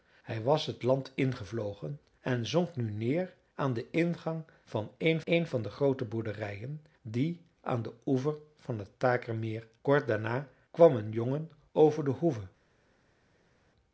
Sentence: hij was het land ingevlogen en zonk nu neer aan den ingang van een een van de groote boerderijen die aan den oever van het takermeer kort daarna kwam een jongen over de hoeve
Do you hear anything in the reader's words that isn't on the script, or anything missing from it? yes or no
no